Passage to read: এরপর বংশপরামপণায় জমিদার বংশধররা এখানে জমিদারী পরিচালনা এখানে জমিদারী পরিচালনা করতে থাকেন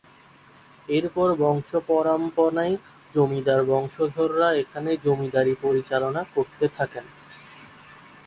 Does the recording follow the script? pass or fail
fail